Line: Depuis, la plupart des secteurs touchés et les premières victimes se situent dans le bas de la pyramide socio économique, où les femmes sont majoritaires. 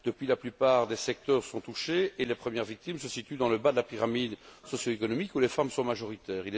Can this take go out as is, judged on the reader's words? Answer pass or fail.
fail